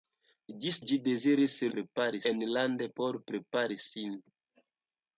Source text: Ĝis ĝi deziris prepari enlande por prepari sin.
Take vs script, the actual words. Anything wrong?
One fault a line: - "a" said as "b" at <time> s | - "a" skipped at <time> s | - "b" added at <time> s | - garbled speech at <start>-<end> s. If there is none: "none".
none